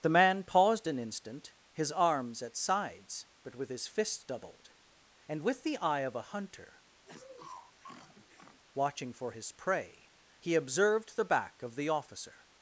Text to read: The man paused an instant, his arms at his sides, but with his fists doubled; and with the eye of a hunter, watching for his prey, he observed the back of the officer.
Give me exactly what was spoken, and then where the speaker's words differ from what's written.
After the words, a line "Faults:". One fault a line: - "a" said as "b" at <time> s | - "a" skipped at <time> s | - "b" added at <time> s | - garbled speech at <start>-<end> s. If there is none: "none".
The man paused an instant, his arms at sides, but with his fists doubled; and with the eye of a hunter, watching for his prey, he observed the back of the officer.
Faults:
- "his" skipped at 2.6 s